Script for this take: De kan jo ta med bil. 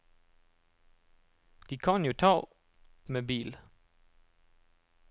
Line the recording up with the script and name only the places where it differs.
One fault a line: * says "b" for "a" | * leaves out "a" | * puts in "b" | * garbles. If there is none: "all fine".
all fine